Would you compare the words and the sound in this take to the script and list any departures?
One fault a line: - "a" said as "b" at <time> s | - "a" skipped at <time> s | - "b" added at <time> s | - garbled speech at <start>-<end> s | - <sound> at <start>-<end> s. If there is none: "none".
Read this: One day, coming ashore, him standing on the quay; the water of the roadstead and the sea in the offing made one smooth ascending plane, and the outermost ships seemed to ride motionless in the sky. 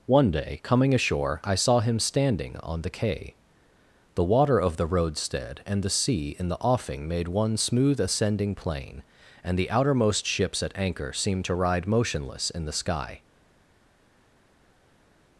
- "I saw" added at 1.4 s
- "at anchor" added at 10.6 s